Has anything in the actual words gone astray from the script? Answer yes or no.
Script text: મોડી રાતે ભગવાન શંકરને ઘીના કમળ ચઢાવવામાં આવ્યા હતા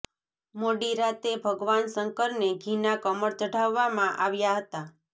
no